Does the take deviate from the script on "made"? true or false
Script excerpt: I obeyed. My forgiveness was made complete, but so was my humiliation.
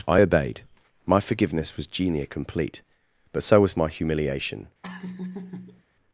true